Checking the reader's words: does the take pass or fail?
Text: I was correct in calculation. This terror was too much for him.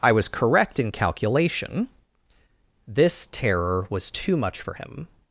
pass